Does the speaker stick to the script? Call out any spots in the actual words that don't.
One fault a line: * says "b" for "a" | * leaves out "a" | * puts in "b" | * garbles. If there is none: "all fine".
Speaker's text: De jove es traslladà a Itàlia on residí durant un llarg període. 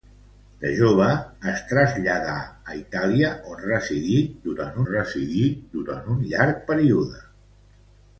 * puts in "residí durant"